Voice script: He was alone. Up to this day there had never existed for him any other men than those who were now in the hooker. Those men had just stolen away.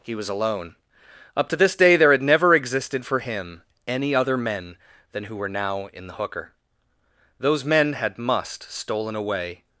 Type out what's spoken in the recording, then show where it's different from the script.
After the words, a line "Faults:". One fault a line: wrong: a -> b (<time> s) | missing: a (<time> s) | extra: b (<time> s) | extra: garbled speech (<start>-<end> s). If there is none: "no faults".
He was alone. Up to this day there had never existed for him any other men than who were now in the hooker. Those men had must stolen away.
Faults:
missing: those (5.2 s)
wrong: just -> must (8.2 s)